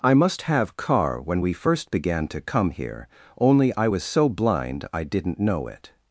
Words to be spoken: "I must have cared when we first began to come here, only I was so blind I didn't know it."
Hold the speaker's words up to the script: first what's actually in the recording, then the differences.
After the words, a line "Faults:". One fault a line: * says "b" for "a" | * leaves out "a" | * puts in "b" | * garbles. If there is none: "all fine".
"I must have car when we first began to come here, only I was so blind I didn't know it."
Faults:
* says "car" for "cared"